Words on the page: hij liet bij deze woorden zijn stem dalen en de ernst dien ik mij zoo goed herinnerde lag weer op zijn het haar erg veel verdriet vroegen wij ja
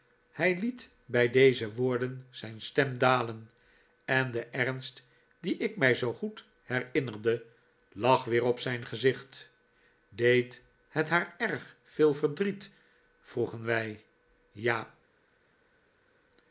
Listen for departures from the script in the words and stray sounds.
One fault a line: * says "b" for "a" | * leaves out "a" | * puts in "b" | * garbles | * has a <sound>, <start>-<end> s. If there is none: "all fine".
* puts in "gezicht deed"